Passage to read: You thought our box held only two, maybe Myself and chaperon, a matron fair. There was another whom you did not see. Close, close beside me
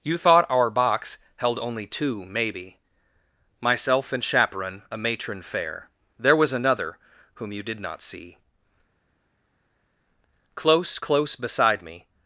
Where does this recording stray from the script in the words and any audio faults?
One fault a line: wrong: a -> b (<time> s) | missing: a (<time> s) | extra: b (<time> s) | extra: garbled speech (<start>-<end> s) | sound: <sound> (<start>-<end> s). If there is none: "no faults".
no faults